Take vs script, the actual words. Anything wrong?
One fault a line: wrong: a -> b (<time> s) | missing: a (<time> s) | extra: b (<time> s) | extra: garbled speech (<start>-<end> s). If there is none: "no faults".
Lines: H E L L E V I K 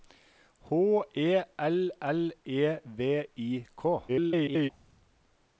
extra: garbled speech (4.1-4.7 s)